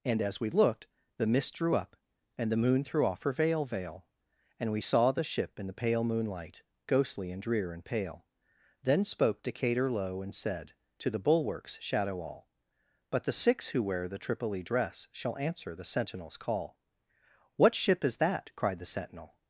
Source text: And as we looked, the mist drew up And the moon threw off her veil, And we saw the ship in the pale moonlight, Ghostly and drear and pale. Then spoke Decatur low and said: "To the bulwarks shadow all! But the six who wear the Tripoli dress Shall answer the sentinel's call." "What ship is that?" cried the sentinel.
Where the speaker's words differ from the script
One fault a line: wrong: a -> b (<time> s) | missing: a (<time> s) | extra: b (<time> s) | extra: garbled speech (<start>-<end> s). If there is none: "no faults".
extra: veil (3.7 s)